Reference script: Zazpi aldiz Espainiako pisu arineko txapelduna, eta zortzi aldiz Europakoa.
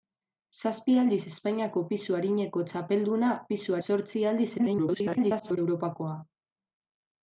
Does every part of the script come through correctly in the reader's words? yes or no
no